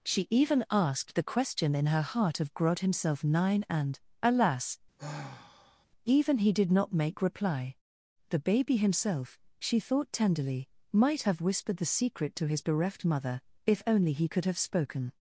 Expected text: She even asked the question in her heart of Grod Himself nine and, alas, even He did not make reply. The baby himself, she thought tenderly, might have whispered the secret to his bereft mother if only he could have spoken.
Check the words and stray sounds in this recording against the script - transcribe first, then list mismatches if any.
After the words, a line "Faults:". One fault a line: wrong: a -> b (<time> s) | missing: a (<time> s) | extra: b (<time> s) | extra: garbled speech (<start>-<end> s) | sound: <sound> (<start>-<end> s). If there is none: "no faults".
She even asked the question in her heart of Grod Himself nine and, alas, even He did not make reply. The baby himself, she thought tenderly, might have whispered the secret to his bereft mother if only he could have spoken.
Faults:
sound: sigh (5.0-5.9 s)